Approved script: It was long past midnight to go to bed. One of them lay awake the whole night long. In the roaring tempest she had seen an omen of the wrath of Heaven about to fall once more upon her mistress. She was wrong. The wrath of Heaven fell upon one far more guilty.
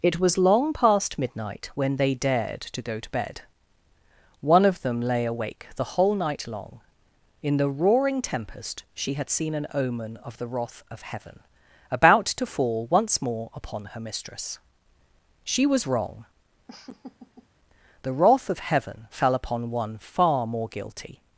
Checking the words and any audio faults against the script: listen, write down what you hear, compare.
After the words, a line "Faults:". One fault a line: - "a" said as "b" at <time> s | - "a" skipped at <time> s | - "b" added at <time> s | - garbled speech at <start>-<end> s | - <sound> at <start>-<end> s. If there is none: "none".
It was long past midnight when they dared to go to bed. One of them lay awake the whole night long. In the roaring tempest she had seen an omen of the wrath of Heaven about to fall once more upon her mistress. She was wrong. The wrath of Heaven fell upon one far more guilty.
Faults:
- "when they dared" added at 1.8 s
- laugh at 16.7-17.5 s